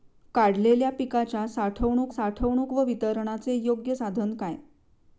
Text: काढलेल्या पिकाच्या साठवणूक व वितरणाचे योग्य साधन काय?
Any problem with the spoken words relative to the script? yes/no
yes